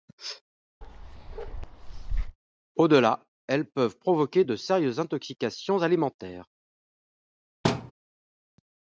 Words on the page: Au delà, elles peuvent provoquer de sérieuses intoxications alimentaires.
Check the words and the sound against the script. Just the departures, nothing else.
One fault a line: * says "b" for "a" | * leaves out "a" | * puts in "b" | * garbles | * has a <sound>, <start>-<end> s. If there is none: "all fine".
* has a bark, 0.8-2.4 s
* has a thud, 7.6-7.9 s